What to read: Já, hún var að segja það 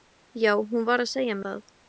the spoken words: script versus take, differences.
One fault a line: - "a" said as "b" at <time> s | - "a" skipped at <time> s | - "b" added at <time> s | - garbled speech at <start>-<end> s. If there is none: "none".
none